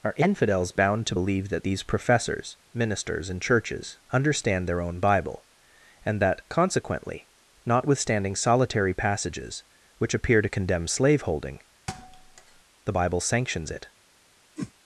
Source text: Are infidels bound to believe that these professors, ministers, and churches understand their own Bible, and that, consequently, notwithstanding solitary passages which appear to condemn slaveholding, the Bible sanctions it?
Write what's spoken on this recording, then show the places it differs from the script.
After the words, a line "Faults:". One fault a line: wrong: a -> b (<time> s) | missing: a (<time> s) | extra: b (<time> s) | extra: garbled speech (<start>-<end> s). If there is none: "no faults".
Are infidels bound to believe that these professors, ministers, and churches understand their own Bible, and that, consequently, notwithstanding solitary passages which appear to condemn slaveholding, the Bible sanctions it?
Faults:
no faults